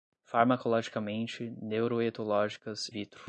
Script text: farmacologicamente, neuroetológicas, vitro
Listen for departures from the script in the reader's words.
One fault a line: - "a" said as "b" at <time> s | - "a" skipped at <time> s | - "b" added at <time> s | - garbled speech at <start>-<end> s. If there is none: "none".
none